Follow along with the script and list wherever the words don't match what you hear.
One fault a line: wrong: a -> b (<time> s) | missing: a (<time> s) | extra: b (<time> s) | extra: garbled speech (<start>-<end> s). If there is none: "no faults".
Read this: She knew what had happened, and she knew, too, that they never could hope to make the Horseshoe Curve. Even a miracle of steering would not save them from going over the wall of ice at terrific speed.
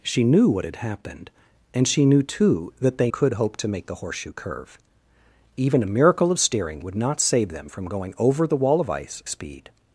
missing: never (3.1 s)
missing: at terrific (9.2 s)